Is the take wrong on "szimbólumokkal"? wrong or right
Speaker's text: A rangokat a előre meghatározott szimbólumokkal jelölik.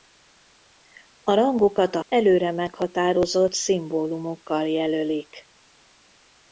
right